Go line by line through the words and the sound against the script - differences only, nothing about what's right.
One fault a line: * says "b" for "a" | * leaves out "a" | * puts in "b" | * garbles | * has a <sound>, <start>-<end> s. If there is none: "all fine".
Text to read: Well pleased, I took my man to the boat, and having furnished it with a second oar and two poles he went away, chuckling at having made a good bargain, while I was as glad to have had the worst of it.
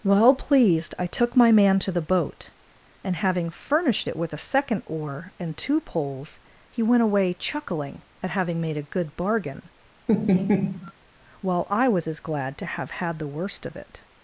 * has a laugh, 10.1-10.9 s